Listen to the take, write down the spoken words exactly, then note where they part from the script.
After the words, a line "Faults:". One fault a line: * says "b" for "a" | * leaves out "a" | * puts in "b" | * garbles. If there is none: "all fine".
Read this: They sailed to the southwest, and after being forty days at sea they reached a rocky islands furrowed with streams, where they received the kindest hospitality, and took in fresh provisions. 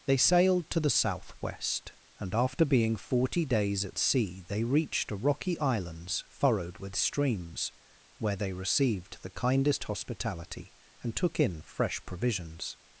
They sailed to the southwest, and after being forty days at sea they reached a rocky islands furrowed with streams, where they received the kindest hospitality, and took in fresh provisions.
Faults:
all fine